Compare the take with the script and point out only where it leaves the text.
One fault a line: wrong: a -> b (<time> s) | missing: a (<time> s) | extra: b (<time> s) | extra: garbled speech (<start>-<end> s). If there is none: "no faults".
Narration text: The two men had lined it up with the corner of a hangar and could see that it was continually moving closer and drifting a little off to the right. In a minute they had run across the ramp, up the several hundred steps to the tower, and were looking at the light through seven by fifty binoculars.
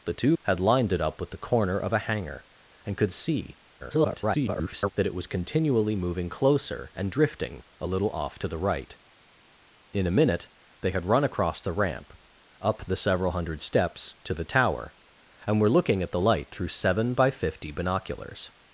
missing: men (0.3 s)
extra: garbled speech (3.8-4.9 s)